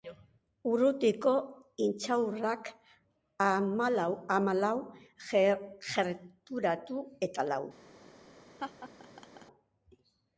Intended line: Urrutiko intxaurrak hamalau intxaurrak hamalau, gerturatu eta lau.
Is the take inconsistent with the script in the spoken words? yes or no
yes